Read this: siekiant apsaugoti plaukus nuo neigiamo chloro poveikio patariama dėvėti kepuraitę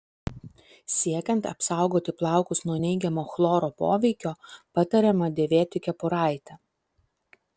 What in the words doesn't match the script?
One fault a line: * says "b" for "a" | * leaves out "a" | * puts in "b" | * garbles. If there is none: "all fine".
all fine